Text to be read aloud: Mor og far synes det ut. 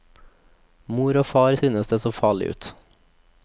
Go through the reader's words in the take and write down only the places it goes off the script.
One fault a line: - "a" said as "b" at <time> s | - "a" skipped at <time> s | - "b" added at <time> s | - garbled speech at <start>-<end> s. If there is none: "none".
- "så farlig" added at 2.0 s